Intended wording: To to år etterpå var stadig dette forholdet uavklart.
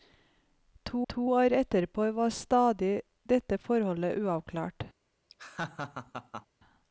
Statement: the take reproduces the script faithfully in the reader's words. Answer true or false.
true